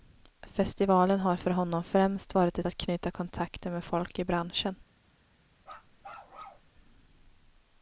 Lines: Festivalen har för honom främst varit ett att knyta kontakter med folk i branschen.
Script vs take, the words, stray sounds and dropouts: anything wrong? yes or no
yes